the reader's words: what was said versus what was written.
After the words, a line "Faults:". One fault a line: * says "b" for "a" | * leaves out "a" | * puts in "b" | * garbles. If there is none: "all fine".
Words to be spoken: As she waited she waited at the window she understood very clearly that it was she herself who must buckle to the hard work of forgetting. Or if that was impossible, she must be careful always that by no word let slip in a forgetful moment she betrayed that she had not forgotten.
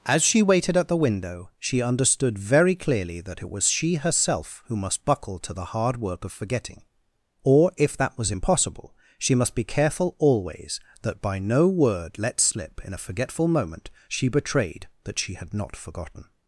As she waited at the window she understood very clearly that it was she herself who must buckle to the hard work of forgetting. Or if that was impossible, she must be careful always that by no word let slip in a forgetful moment she betrayed that she had not forgotten.
Faults:
* leaves out "she waited"